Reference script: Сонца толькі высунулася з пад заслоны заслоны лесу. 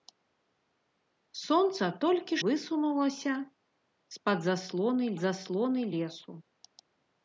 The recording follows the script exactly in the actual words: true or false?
true